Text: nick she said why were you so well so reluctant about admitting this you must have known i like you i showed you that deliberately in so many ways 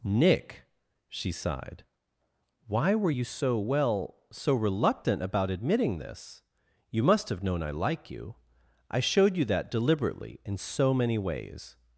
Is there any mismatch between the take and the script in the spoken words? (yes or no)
yes